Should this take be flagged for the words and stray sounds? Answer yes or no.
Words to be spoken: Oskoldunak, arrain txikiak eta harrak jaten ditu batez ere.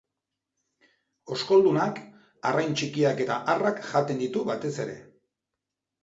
no